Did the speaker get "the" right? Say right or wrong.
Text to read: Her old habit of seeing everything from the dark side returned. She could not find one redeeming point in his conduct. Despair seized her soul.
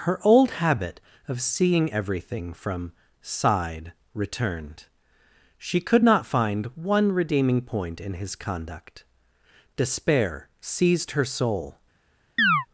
wrong